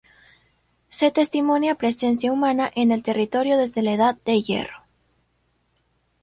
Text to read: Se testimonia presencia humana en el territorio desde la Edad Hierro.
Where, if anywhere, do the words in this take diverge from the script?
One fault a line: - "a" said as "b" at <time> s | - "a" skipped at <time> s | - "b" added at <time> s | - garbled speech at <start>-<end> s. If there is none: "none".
- "de" added at 4.2 s